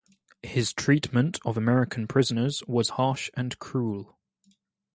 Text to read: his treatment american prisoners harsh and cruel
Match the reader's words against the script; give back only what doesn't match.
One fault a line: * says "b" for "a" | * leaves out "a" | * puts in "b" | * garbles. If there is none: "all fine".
* puts in "of"
* puts in "was"